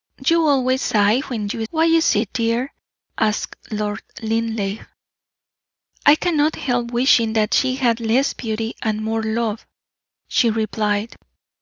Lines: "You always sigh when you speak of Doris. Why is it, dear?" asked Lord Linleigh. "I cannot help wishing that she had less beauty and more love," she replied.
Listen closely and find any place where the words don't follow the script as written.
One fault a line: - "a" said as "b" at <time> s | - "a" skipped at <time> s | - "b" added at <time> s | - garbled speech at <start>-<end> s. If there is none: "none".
- "speak of Doris" skipped at 1.6 s